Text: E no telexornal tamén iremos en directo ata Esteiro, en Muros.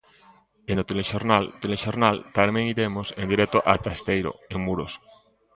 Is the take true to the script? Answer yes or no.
no